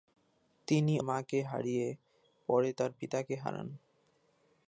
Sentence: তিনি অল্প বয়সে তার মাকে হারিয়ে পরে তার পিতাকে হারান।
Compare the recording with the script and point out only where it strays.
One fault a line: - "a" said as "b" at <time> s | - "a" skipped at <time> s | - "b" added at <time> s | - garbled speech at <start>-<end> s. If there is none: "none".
- "অল্প বয়সে তার" skipped at 0.9 s